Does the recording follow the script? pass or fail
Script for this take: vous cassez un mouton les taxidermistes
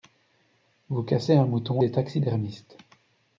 pass